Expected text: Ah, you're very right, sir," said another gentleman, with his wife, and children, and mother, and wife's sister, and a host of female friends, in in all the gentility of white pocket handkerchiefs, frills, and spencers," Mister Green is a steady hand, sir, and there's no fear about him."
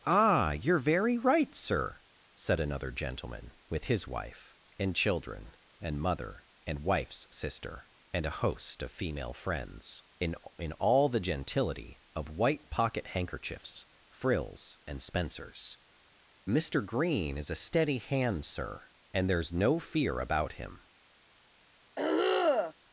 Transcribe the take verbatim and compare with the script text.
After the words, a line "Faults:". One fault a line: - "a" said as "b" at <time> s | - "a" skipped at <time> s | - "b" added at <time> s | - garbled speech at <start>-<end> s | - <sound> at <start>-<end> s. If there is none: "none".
Ah, you're very right, sir," said another gentleman, with his wife, and children, and mother, and wife's sister, and a host of female friends, in in all the gentility of white pocket handkerchiefs, frills, and spencers," Mister Green is a steady hand, sir, and there's no fear about him."
Faults:
- throat clearing at 22.0-22.7 s